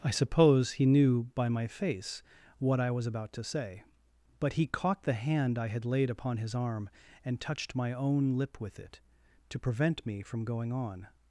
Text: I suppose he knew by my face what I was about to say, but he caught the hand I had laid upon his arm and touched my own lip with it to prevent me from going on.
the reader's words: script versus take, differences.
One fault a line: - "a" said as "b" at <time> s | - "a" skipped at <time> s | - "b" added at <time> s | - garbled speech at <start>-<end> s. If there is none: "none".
none